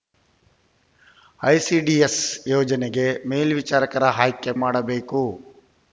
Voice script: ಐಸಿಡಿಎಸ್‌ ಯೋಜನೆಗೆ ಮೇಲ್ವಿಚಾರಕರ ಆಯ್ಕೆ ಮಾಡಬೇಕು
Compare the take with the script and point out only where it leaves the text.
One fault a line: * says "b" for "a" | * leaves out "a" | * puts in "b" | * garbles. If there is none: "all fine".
all fine